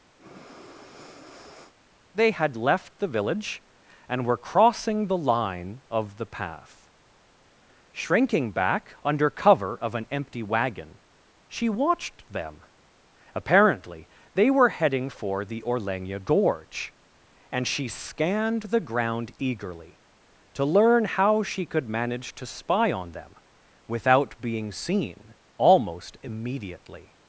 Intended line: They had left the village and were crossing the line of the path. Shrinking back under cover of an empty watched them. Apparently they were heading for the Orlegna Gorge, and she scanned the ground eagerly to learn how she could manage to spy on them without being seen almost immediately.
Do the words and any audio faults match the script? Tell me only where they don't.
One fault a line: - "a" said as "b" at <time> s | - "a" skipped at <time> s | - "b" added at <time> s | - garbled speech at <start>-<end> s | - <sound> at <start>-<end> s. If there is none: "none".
- breath at 0.2-1.7 s
- "wagon she" added at 10.4 s